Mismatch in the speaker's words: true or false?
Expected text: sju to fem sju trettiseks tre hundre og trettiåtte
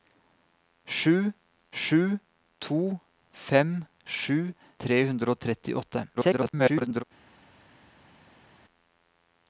true